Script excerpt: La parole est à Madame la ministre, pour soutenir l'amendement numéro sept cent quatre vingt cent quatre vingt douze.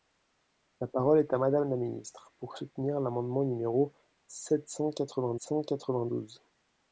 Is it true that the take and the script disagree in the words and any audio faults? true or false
false